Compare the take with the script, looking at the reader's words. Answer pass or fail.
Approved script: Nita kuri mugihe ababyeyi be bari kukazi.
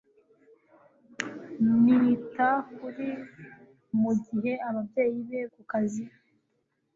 fail